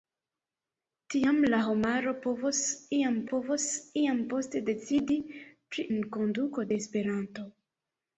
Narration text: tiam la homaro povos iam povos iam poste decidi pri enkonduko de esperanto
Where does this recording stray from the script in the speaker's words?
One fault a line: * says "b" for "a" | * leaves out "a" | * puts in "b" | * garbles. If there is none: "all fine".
all fine